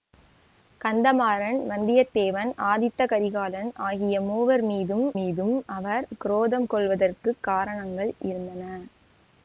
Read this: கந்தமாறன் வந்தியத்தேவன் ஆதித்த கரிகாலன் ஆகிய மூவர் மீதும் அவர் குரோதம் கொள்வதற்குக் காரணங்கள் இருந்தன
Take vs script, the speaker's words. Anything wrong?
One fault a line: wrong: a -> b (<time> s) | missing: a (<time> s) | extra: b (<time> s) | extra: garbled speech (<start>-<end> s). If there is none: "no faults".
extra: மீதும் (5.2 s)